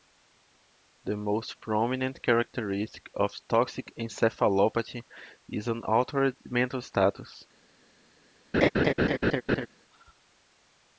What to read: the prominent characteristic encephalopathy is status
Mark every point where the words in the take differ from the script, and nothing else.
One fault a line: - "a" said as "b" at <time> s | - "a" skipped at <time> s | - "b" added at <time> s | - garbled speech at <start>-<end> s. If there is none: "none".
- "most" added at 1.1 s
- "of toxic" added at 3.1 s
- "an altered mental" added at 5.7 s